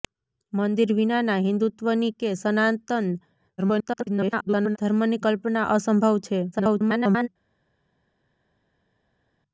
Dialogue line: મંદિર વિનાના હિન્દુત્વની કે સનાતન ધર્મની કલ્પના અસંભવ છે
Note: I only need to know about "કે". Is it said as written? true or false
true